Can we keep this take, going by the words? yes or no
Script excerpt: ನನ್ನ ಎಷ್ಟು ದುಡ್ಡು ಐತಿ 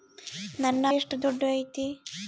yes